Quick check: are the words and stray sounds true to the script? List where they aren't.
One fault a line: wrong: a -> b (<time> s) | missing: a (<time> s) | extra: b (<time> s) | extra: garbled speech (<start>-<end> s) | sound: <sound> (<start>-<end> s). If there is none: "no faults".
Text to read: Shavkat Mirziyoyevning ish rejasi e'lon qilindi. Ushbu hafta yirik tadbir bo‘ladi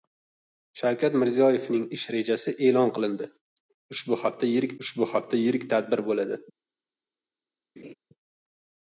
extra: ushbu hafta yirik (4.9 s)
sound: laugh (7.8-7.9 s)